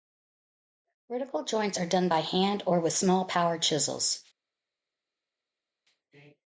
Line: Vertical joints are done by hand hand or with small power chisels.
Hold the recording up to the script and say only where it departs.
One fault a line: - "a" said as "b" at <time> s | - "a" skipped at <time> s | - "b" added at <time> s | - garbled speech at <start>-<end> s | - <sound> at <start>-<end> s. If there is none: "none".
- "hand" skipped at 2.6 s